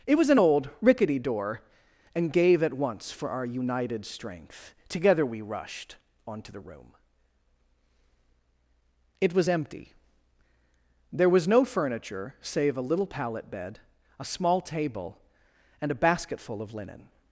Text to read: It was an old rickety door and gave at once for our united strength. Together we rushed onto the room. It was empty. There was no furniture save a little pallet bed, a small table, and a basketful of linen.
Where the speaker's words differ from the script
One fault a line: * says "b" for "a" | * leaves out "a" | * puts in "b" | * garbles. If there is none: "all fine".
all fine